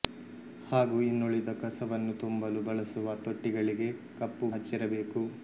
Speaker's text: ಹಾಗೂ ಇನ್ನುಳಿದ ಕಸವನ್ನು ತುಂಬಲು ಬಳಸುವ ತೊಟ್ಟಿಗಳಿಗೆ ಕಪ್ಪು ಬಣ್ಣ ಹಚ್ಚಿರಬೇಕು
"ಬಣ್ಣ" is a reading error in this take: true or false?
true